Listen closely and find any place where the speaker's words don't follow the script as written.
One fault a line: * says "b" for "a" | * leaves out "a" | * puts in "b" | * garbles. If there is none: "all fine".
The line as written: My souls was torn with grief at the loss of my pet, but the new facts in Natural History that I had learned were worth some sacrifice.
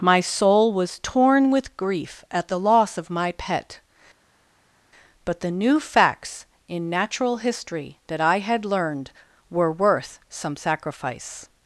* says "soul" for "souls"